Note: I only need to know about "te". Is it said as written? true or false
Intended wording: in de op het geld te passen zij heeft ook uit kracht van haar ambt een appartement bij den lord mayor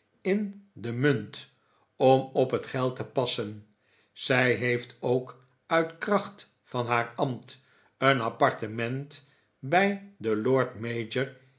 true